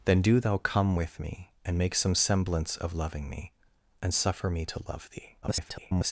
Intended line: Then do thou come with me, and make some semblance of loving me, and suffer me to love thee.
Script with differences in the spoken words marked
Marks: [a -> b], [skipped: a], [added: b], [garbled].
Then do thou come with me, and make some semblance of loving me, and suffer me to love thee. [garbled]